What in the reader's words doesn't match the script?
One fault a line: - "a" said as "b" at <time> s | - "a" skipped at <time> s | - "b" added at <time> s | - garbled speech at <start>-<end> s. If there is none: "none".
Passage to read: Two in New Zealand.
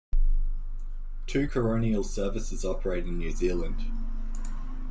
- "coronial services operate" added at 1.5 s